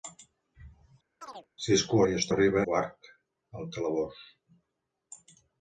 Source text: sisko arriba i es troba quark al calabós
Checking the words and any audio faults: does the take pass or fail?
fail